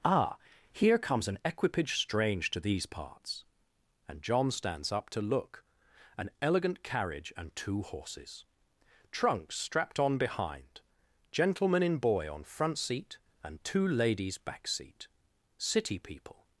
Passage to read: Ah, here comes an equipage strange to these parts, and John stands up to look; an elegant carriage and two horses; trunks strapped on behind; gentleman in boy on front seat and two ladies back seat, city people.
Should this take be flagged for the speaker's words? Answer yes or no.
no